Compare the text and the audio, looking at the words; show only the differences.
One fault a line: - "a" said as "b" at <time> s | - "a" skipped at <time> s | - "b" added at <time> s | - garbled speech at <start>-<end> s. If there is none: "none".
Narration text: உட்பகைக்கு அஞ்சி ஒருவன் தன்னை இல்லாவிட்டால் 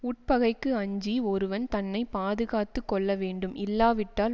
- "பாதுகாத்து கொள்ள வேண்டும்" added at 2.1 s